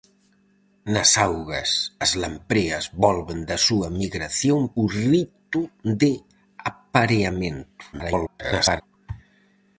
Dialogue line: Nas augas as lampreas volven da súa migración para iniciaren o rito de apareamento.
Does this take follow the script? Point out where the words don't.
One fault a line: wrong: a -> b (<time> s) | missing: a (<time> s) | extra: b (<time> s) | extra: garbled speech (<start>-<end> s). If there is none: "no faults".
missing: para iniciaren (4.6 s)
extra: garbled speech (7.9-8.8 s)